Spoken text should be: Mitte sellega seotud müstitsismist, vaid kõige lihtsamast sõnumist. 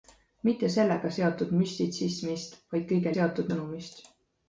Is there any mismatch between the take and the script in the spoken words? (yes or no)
yes